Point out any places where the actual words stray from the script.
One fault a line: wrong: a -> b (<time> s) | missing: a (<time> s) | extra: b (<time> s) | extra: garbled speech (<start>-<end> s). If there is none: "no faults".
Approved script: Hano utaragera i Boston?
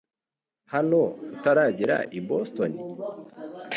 no faults